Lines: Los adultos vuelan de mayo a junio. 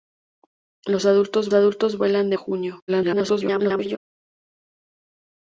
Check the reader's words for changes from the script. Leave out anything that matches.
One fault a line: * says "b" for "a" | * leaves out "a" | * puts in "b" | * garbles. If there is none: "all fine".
* puts in "adultos"
* leaves out "mayo"
* garbles